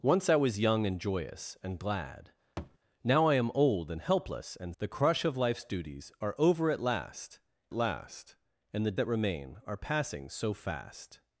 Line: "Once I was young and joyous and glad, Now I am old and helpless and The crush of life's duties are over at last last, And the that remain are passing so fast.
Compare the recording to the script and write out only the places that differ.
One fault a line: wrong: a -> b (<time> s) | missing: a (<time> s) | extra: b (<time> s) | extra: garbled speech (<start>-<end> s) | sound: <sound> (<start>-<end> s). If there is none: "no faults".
sound: thud (2.6-2.8 s)